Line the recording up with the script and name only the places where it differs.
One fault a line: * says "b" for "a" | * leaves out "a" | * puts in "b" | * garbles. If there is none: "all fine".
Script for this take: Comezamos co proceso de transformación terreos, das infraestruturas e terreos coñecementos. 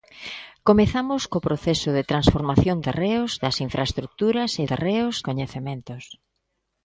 all fine